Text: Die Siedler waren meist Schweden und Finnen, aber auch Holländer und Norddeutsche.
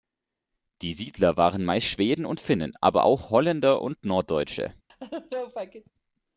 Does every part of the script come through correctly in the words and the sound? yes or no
no